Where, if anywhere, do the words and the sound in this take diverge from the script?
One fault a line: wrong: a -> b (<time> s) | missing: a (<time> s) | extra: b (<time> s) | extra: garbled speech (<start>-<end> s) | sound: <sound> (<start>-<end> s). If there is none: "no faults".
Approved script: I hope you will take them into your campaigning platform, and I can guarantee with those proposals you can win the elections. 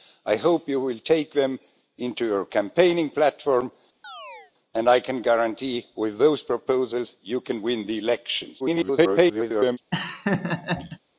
sound: chirp (4.0-4.5 s)
extra: garbled speech (8.6-9.8 s)
sound: laugh (9.9-11.0 s)